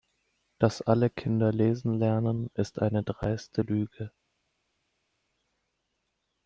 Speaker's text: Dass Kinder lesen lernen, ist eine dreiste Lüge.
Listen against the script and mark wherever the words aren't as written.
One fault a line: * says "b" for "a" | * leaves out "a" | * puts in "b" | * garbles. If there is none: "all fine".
* puts in "alle"